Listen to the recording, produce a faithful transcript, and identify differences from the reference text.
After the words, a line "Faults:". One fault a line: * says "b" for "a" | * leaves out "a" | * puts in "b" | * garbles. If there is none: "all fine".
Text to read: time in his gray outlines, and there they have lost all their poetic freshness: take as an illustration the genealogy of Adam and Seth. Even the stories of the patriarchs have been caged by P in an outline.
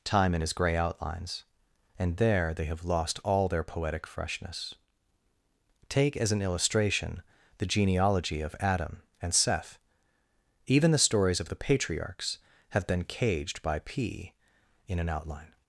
time in his gray outlines, and there they have lost all their poetic freshness: take as an illustration the genealogy of Adam and Seth. Even the stories of the patriarchs have been caged by P in an outline.
Faults:
all fine